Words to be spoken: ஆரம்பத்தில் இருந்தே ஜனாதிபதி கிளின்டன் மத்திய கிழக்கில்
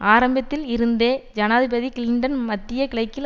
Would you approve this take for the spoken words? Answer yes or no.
yes